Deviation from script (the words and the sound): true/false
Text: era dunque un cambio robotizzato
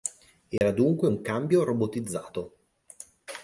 true